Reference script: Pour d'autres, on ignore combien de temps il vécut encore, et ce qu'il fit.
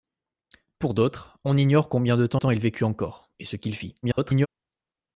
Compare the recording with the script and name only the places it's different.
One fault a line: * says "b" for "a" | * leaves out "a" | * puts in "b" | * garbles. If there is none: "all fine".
* puts in "temps"
* garbles